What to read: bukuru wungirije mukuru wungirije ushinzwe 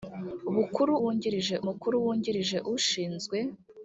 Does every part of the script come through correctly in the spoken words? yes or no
yes